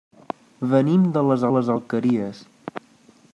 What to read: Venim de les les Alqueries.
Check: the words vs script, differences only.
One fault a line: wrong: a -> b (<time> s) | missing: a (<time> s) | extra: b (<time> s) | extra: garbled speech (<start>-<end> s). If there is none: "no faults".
no faults